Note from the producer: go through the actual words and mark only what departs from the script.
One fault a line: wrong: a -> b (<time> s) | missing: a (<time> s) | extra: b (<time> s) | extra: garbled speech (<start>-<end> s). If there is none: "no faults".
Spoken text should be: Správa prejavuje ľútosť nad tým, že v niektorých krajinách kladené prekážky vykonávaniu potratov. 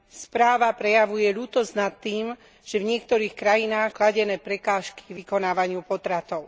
no faults